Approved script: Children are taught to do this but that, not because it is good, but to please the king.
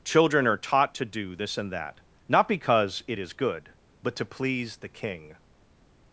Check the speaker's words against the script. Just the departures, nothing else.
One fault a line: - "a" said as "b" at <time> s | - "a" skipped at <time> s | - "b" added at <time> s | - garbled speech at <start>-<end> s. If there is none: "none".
- "but" said as "and" at 1.6 s